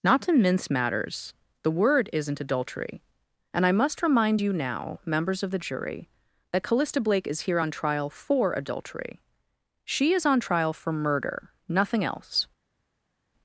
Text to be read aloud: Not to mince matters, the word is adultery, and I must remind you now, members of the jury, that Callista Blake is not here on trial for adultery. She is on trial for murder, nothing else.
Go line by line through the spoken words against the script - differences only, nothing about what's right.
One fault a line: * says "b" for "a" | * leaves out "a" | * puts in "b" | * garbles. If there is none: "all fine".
* says "isn't" for "is"
* leaves out "not"